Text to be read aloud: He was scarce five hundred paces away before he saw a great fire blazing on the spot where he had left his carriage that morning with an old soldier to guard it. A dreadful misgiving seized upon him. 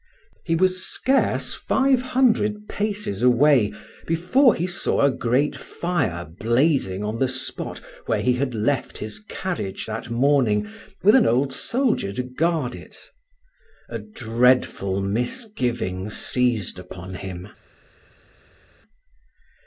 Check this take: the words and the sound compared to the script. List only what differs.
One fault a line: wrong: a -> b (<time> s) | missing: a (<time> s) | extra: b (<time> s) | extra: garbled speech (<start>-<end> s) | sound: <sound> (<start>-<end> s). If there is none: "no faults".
no faults